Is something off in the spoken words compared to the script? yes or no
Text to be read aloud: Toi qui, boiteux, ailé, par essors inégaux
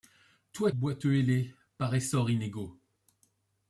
yes